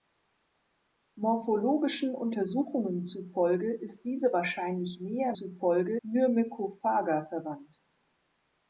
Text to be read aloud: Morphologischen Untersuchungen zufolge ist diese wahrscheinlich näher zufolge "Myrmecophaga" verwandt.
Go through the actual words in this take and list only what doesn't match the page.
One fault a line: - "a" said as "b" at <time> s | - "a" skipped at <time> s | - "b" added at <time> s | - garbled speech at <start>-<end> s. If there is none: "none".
none